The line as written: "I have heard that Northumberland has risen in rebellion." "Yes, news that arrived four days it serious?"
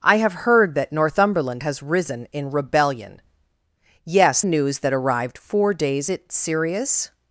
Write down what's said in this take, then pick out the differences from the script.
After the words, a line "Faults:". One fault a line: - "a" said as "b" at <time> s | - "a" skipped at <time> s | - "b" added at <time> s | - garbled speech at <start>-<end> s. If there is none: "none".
"I have heard that Northumberland has risen in rebellion." "Yes, news that arrived four days it serious?"
Faults:
none